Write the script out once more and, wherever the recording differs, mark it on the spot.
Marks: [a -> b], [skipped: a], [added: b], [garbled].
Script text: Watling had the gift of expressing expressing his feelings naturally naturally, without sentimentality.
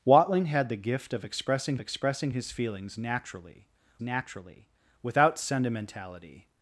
Watling had the gift of expressing expressing his feelings naturally naturally, without sentimentality.